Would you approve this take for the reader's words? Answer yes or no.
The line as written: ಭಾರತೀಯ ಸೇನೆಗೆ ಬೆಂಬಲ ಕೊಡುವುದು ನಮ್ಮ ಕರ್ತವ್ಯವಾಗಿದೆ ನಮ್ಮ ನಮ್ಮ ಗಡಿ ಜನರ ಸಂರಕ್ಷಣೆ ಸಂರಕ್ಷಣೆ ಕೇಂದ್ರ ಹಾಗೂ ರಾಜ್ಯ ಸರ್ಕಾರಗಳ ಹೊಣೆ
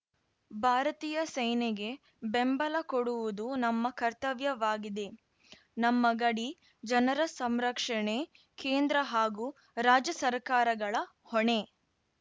no